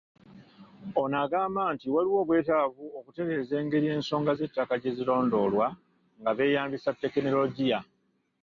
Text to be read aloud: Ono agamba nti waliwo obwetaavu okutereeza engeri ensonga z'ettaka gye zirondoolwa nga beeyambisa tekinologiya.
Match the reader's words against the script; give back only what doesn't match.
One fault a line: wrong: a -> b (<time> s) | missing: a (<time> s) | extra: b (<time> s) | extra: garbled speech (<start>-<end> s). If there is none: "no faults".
no faults